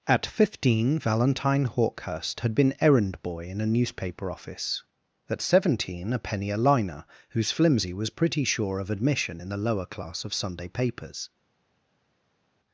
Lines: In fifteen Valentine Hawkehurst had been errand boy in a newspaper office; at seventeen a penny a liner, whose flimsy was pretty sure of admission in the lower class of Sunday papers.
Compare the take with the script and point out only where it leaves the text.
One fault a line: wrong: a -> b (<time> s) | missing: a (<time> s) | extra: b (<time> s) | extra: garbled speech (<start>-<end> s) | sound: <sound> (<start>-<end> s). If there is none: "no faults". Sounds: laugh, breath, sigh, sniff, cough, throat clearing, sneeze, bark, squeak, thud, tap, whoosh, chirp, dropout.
wrong: In -> At (0.1 s)